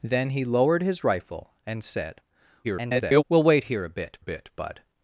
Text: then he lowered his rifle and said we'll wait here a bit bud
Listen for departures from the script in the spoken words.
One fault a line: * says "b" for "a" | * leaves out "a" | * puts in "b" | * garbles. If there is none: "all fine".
* garbles
* puts in "bit"